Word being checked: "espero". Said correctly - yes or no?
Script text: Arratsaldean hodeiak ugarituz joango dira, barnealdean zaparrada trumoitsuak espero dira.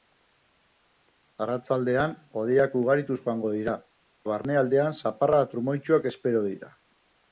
yes